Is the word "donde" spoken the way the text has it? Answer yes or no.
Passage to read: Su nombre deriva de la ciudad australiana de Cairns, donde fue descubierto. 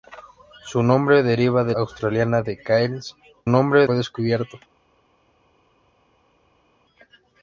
no